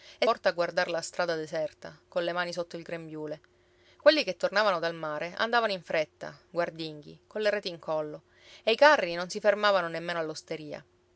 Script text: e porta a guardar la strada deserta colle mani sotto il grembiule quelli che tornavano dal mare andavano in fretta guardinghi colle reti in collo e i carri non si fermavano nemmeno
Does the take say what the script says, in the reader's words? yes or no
yes